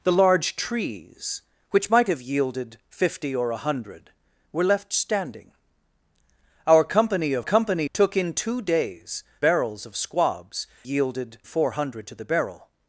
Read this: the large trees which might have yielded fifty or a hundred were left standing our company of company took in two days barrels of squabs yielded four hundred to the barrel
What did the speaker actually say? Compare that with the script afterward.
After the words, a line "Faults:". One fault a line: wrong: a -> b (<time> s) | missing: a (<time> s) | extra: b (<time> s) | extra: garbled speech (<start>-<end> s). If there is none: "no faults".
the large trees which might have yielded fifty or a hundred were left standing our company of company took in two days barrels of squabs yielded four hundred to the barrel
Faults:
no faults